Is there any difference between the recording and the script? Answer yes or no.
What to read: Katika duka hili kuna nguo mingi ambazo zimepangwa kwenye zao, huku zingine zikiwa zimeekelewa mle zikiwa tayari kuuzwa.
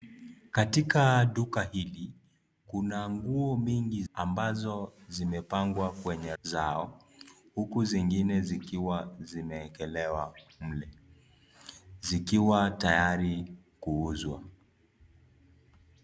no